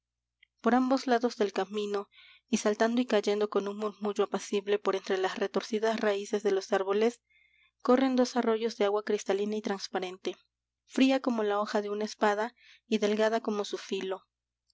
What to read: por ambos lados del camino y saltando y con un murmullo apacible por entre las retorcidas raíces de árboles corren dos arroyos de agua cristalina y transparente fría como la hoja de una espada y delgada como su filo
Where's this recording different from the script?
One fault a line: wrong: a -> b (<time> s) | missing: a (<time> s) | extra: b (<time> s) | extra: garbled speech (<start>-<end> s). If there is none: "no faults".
extra: cayendo (3.0 s)
extra: los (6.5 s)